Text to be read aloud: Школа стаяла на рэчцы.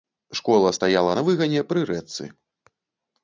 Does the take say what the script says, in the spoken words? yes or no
no